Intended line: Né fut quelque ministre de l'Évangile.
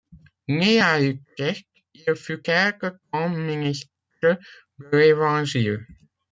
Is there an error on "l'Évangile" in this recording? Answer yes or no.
no